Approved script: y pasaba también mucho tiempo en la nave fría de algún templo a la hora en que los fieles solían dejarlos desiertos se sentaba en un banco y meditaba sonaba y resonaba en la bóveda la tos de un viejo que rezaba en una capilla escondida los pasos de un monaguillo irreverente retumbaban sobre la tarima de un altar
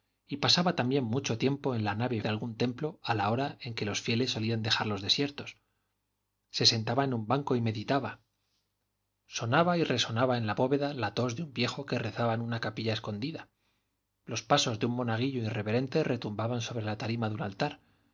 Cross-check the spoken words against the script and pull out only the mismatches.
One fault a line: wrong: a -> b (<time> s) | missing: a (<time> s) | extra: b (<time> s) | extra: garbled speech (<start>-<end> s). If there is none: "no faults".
missing: fría (2.2 s)